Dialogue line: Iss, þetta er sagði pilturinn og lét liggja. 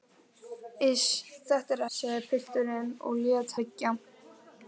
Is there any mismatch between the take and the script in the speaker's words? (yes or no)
no